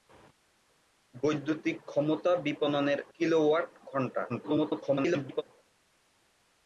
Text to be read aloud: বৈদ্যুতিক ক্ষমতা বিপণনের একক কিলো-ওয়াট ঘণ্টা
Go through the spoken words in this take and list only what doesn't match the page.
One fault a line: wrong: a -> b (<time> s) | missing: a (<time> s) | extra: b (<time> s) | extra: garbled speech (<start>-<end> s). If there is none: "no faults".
missing: একক (3.0 s)
extra: garbled speech (4.3-5.4 s)